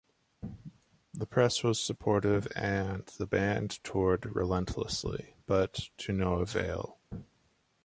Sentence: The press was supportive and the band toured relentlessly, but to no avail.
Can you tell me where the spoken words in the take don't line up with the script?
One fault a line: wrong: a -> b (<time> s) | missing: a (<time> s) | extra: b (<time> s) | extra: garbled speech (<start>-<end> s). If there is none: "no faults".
no faults